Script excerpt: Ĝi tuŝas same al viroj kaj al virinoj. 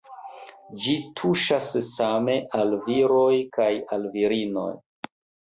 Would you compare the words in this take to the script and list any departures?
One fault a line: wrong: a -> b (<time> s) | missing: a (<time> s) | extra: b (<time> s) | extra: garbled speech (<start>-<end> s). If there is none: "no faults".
no faults